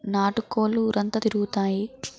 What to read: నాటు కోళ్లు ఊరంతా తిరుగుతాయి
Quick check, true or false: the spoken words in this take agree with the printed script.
true